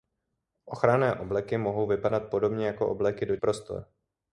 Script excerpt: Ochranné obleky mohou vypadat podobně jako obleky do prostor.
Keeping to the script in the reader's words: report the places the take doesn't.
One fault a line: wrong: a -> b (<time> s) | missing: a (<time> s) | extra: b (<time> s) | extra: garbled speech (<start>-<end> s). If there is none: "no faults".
no faults